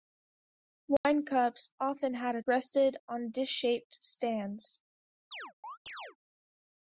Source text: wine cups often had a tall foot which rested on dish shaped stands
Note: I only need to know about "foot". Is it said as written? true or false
false